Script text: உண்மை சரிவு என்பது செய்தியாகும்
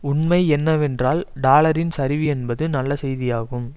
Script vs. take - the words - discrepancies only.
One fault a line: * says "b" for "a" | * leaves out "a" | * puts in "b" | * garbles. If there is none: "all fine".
* puts in "என்னவென்றால் டாலரின்"
* puts in "நல்ல"